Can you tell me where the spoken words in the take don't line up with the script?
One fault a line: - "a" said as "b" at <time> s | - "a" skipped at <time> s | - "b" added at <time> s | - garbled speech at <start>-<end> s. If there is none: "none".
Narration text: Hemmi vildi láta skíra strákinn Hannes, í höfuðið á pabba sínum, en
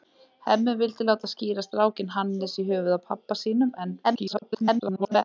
- garbled speech at 4.0-5.2 s